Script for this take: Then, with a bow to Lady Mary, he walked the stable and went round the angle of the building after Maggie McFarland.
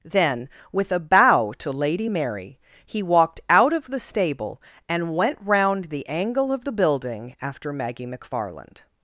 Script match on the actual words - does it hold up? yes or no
no